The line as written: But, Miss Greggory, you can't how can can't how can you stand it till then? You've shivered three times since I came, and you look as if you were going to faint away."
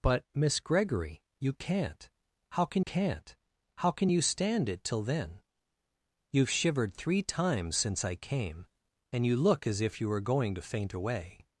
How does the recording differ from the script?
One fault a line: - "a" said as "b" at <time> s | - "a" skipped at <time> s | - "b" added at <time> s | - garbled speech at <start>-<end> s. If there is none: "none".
none